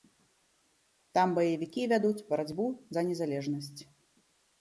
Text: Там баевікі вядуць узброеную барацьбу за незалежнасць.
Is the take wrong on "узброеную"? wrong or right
wrong